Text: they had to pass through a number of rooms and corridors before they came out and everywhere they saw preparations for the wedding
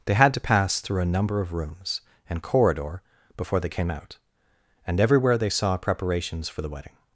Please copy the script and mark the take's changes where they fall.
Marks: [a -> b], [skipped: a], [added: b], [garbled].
they had to pass through a number of rooms and [corridors -> corridor] before they came out and everywhere they saw preparations for the wedding